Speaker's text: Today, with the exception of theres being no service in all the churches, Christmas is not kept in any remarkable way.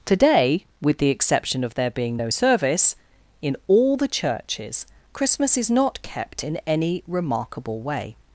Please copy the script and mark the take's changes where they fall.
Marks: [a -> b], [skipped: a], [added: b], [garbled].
Today, with the exception of [theres -> there] being no service in all the churches, Christmas is not kept in any remarkable way.